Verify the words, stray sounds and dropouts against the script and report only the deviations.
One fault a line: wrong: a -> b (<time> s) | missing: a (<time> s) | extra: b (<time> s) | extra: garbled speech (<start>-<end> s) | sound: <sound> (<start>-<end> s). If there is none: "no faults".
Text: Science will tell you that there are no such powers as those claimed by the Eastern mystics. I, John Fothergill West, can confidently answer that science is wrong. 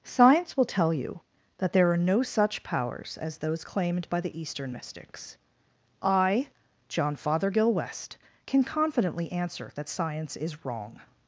no faults